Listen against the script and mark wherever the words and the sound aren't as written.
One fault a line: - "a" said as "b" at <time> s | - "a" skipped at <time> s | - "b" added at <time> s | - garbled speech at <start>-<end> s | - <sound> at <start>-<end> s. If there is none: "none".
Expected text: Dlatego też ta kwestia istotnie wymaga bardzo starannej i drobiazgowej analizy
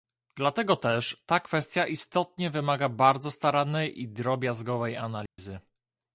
- dropout at 5.3-5.4 s